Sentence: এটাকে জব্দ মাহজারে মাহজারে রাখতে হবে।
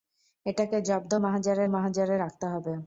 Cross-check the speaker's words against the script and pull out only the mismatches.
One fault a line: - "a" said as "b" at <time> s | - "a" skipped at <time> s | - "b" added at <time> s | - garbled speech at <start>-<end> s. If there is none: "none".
none